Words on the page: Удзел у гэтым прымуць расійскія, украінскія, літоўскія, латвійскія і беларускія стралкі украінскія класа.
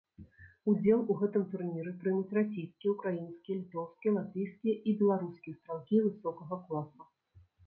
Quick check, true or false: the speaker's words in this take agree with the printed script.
false